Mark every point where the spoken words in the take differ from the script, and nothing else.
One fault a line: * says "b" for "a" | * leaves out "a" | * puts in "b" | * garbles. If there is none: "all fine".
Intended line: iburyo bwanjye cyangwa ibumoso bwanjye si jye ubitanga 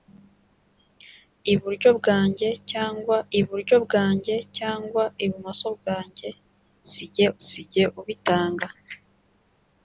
* puts in "iburyo bwanjye cyangwa"
* puts in "si jye"